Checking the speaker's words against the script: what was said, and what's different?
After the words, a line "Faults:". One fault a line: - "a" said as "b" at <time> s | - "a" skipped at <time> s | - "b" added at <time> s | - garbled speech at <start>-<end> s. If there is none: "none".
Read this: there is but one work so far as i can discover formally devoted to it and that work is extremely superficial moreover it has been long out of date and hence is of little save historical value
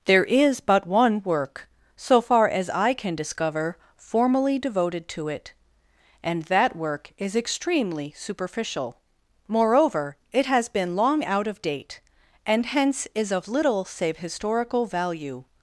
there is but one work so far as i can discover formally devoted to it and that work is extremely superficial moreover it has been long out of date and hence is of little save historical value
Faults:
none